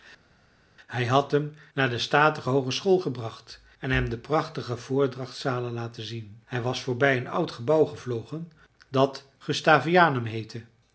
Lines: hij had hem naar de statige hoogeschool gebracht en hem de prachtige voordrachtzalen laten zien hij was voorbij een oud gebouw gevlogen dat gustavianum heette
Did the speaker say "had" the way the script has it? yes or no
yes